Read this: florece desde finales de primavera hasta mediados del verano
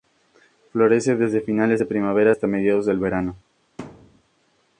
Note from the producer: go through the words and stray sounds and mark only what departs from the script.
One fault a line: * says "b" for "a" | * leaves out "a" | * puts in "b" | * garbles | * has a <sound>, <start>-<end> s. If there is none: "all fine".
* has a thud, 3.8-4.2 s